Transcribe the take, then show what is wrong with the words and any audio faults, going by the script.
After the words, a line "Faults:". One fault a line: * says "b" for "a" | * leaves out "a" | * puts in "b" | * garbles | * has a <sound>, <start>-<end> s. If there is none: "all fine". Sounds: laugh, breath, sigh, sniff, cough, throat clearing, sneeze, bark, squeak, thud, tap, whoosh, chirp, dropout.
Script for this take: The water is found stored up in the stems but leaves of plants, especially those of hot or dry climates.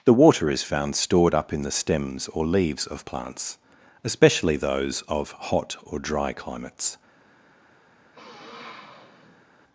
The water is found stored up in the stems or leaves of plants, especially those of hot or dry climates.
Faults:
* says "or" for "but"
* has a sniff, 8.1-9.5 s